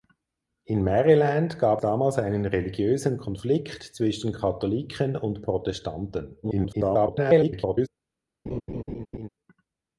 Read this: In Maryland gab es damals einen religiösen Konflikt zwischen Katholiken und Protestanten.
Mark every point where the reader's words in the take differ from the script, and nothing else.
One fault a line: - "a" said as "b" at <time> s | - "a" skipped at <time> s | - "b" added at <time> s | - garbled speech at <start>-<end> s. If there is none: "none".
- "es" skipped at 1.8 s
- garbled speech at 6.4-7.9 s